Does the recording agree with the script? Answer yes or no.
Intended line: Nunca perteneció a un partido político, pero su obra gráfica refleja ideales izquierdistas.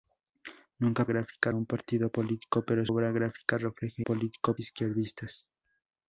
no